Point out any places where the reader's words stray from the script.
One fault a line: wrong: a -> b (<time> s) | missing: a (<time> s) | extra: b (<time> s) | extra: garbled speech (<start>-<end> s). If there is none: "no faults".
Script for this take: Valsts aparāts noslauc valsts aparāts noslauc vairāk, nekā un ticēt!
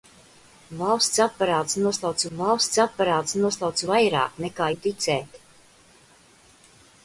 no faults